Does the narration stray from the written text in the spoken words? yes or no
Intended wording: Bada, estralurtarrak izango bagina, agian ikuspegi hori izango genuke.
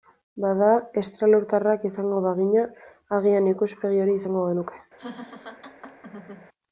no